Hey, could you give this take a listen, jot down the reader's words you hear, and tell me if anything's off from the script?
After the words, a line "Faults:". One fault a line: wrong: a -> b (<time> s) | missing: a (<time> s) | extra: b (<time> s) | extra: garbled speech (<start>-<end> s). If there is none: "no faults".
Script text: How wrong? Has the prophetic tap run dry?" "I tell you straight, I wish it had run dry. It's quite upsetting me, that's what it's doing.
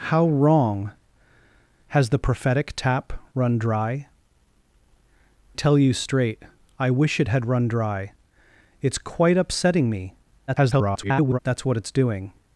How wrong? Has the prophetic tap run dry?" "tell you straight, I wish it had run dry. It's quite upsetting me, [garbled] that's what it's doing.
Faults:
missing: I (4.1 s)
extra: garbled speech (10.5-11.4 s)